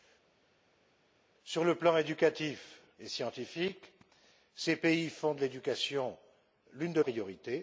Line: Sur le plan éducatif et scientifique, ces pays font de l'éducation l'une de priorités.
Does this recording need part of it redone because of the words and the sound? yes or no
no